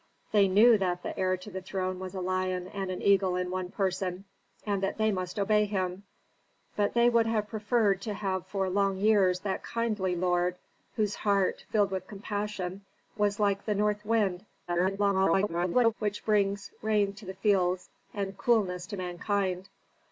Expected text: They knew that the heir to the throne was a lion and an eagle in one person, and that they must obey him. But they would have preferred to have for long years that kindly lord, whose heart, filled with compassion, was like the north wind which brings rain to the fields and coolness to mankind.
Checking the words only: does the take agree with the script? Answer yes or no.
no